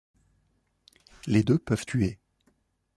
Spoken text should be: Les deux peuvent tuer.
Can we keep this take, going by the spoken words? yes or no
yes